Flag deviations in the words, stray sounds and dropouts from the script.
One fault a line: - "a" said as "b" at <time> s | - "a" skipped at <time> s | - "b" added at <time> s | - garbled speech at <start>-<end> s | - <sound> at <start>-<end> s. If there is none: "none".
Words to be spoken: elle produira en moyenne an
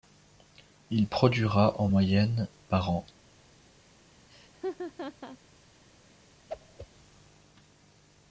- "elle" said as "il" at 0.9 s
- "par" added at 2.7 s
- laugh at 4.3-5.4 s
- whoosh at 6.5-6.9 s